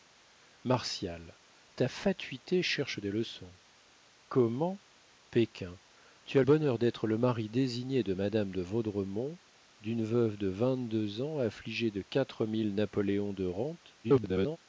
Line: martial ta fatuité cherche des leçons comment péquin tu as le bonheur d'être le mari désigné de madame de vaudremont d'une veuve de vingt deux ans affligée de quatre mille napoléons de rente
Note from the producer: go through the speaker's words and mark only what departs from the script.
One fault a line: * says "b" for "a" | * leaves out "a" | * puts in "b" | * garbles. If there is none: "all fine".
* leaves out "le"
* garbles